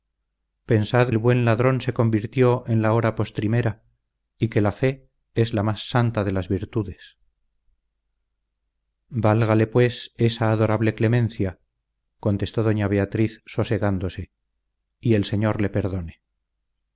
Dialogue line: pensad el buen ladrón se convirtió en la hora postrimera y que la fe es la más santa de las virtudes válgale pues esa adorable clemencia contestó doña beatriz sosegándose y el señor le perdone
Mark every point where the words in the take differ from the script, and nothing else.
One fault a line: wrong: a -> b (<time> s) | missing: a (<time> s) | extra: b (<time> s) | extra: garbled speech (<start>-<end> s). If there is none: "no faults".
no faults